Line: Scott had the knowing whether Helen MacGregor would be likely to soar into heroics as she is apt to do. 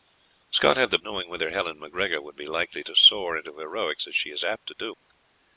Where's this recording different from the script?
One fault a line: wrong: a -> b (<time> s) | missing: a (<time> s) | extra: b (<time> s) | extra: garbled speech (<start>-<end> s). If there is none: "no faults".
no faults